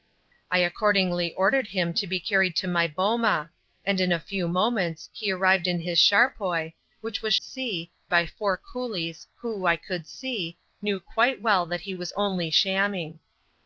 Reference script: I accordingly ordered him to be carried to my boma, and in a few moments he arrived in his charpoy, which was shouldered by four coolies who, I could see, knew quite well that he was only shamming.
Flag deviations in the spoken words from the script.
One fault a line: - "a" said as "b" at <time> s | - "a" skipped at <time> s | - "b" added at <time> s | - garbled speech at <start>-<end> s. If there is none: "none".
- "shouldered" said as "see" at 7.4 s